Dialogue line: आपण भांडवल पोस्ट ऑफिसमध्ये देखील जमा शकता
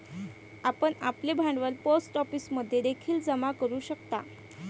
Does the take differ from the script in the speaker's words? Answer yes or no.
yes